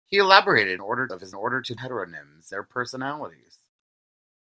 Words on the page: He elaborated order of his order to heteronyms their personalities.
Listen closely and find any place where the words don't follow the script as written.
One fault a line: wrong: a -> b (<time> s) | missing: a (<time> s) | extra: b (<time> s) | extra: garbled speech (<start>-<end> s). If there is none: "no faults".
no faults